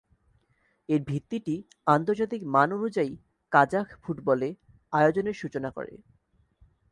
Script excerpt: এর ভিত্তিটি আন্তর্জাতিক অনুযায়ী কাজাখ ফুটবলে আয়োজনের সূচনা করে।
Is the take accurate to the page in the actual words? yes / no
no